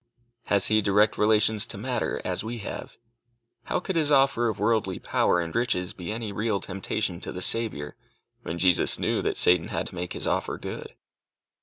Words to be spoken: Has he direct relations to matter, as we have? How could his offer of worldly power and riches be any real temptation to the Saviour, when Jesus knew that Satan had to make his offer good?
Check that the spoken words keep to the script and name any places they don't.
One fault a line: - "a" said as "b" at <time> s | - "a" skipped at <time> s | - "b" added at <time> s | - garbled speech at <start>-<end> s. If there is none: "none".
none